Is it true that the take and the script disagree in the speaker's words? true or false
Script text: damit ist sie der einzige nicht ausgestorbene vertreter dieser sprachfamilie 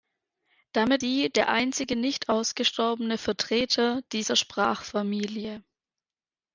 true